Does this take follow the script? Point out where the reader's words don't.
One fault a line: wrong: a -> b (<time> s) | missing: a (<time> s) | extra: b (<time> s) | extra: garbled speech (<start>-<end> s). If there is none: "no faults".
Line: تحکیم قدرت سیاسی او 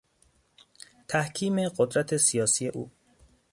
no faults